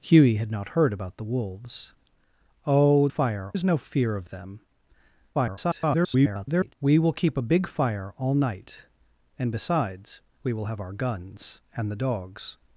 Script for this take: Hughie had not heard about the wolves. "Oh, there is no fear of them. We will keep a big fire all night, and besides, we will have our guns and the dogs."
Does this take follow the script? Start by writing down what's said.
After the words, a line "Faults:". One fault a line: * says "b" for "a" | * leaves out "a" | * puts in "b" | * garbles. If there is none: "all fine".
Hughie had not heard about the wolves. "Oh, fire is no fear of them. [garbled] We will keep a big fire all night, and besides, we will have our guns and the dogs."
Faults:
* says "fire" for "there"
* garbles